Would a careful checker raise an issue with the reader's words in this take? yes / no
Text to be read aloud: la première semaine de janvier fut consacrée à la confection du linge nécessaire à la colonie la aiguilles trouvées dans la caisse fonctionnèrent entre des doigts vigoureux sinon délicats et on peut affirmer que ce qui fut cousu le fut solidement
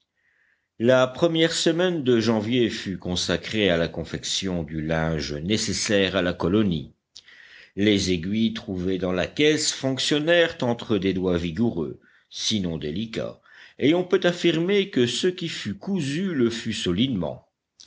yes